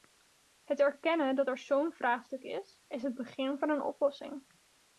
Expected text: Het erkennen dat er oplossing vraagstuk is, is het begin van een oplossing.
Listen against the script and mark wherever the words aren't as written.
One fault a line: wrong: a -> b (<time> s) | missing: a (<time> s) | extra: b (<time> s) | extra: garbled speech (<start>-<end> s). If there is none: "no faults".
wrong: oplossing -> zo'n (1.6 s)